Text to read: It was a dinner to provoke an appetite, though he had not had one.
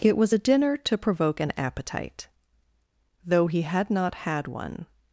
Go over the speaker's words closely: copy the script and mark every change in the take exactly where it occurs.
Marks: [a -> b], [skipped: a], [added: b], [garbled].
It was a dinner to provoke an appetite, though he had not had one.